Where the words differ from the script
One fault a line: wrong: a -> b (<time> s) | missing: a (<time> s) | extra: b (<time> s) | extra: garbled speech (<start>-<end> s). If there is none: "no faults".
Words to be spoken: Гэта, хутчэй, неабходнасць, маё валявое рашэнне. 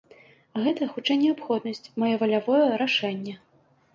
no faults